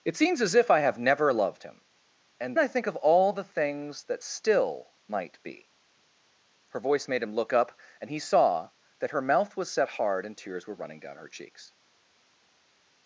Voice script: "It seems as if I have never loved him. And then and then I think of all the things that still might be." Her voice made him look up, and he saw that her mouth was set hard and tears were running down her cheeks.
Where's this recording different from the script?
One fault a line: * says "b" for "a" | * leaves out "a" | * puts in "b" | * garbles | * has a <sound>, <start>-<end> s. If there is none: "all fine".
* leaves out "then and then"